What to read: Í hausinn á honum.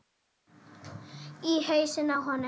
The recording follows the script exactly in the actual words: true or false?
true